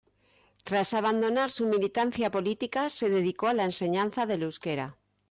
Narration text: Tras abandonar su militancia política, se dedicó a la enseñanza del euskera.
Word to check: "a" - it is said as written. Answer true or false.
true